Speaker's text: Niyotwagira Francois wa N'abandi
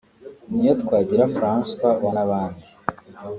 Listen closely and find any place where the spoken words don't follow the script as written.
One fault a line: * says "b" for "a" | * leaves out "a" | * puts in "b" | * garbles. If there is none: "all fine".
all fine